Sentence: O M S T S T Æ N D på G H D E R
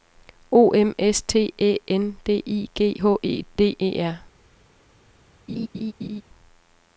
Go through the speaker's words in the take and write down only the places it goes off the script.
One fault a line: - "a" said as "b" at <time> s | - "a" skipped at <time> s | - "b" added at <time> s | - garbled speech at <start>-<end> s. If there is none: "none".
- "S T" skipped at 1.5 s
- "på" said as "I" at 2.5 s
- "E" added at 3.2 s